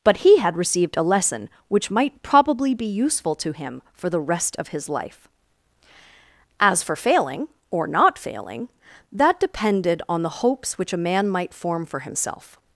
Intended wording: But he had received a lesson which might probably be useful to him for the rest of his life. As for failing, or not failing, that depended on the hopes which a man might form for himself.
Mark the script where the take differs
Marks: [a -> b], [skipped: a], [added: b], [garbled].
But he had received a lesson which might probably be useful to him for the rest of his life. As for failing, or not failing, that depended on the hopes which a man might form for himself.